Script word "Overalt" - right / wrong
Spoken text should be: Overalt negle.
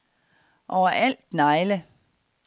right